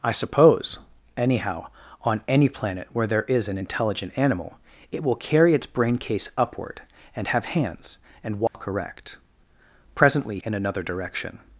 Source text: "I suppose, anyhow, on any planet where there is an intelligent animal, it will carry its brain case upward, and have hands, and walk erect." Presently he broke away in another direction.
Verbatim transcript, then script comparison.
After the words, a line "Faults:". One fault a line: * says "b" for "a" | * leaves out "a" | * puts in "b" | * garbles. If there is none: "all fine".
"I suppose, anyhow, on any planet where there is an intelligent animal, it will carry its brain case upward, and have hands, and walk erect." Presently in another direction.
Faults:
* leaves out "he broke away"